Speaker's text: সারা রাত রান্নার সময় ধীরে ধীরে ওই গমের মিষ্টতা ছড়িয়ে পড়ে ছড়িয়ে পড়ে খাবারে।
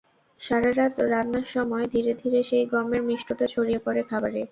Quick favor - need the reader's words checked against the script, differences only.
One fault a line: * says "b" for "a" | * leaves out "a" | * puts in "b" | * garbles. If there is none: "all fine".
* says "সেই" for "ওই"
* leaves out "ছড়িয়ে পড়ে"